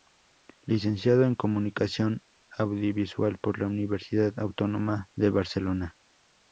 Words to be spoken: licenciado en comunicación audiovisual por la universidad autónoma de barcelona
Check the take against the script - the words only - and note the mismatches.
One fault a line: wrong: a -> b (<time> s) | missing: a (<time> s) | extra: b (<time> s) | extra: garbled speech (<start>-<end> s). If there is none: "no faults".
no faults